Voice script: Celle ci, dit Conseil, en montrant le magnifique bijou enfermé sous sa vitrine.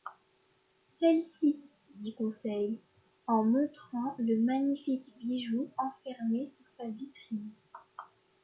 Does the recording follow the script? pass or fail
pass